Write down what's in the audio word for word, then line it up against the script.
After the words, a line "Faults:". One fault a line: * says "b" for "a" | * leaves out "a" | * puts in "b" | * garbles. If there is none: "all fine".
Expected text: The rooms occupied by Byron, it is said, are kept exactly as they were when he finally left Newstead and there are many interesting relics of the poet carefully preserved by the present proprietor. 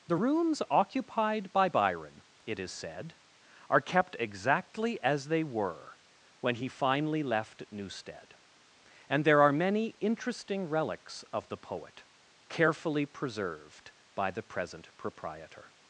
The rooms occupied by Byron, it is said, are kept exactly as they were when he finally left Newstead and there are many interesting relics of the poet carefully preserved by the present proprietor.
Faults:
all fine